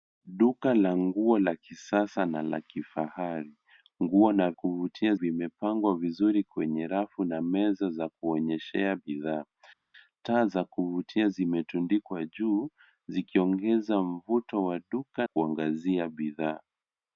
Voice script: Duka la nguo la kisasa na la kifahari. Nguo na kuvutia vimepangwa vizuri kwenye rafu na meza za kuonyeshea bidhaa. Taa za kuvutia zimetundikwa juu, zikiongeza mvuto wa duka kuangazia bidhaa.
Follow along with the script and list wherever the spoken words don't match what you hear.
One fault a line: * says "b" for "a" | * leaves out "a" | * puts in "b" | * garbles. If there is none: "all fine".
all fine